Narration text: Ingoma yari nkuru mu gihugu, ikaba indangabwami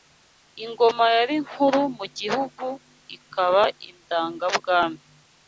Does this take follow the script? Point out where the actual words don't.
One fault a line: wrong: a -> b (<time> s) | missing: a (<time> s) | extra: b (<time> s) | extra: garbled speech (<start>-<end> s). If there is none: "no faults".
no faults